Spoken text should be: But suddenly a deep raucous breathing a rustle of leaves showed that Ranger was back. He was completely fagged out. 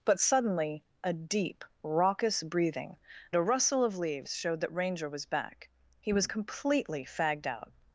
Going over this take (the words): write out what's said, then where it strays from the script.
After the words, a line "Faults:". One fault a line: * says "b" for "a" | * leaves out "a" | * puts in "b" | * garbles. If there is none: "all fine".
But suddenly a deep raucous breathing a rustle of leaves showed that Ranger was back. He was completely fagged out.
Faults:
all fine